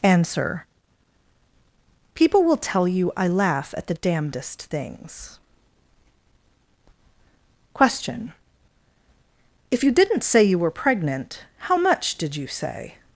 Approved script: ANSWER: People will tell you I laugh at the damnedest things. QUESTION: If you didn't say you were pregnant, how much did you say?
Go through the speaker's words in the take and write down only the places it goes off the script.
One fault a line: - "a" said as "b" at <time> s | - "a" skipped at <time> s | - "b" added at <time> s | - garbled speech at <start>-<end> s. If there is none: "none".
none